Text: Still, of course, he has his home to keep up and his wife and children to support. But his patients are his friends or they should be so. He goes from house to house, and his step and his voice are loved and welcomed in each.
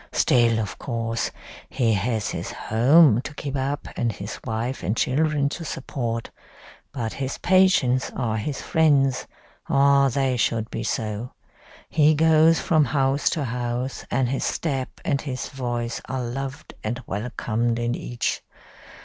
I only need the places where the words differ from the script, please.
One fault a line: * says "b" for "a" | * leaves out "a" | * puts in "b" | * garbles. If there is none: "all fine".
all fine